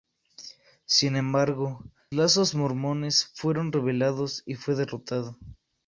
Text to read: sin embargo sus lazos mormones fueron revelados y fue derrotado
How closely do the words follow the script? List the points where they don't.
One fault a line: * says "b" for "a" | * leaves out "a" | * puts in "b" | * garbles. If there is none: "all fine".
* leaves out "sus"